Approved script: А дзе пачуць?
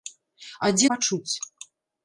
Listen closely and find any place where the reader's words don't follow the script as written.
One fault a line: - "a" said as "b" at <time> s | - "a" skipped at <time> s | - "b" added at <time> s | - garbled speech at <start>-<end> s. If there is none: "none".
none